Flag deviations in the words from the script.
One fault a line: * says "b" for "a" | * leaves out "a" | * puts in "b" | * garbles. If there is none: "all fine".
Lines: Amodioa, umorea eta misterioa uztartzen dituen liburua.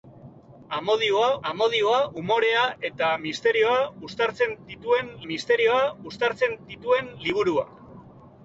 * puts in "amodioa"
* puts in "misterioa uztartzen dituen"